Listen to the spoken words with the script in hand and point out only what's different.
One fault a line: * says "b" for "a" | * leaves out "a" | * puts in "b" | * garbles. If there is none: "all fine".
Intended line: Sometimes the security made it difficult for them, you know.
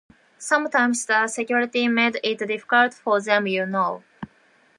all fine